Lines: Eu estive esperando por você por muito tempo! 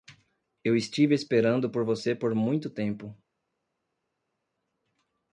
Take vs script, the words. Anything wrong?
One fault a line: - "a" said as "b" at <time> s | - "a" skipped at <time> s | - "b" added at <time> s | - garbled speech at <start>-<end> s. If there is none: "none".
none